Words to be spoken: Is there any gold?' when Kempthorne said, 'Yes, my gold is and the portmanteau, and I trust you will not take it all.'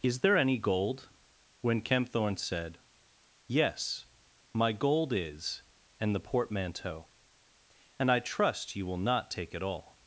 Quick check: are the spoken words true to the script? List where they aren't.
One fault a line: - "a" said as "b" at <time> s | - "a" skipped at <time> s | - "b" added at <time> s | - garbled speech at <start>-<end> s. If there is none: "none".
none